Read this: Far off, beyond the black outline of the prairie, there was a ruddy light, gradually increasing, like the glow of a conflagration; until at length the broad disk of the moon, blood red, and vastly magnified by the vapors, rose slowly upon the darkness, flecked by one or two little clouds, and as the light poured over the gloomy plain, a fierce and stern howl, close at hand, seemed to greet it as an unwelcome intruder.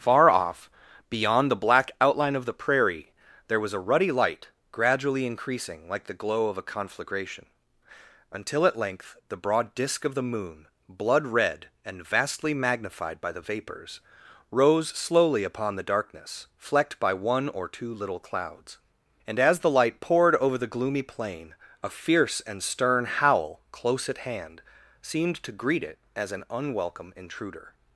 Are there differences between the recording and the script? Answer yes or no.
no